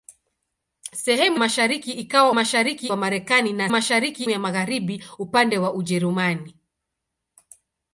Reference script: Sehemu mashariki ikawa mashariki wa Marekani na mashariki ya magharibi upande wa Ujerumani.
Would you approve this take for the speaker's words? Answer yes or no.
yes